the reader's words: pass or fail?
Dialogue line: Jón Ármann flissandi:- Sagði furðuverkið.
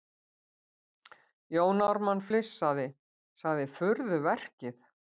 pass